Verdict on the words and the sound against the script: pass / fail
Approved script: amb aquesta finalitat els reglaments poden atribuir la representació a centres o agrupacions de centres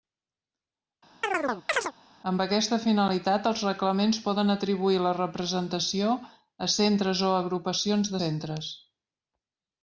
fail